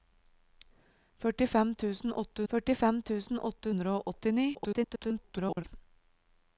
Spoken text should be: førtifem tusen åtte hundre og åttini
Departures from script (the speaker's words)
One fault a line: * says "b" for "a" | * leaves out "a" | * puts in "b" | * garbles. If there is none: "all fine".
* puts in "førtifem tusen åtte"
* garbles